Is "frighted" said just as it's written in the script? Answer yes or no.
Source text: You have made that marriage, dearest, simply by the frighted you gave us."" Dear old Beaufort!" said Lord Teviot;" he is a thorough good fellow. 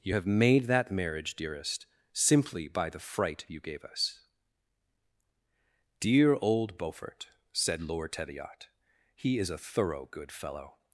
no